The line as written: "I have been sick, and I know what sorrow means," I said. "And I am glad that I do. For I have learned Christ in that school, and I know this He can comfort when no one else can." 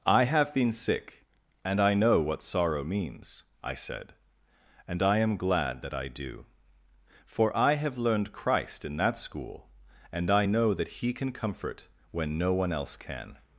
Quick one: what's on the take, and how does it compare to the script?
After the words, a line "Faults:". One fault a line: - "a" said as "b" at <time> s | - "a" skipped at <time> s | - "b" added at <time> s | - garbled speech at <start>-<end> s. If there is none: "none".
"I have been sick, and I know what sorrow means," I said. "And I am glad that I do. For I have learned Christ in that school, and I know that He can comfort when no one else can."
Faults:
- "this" said as "that" at 10.7 s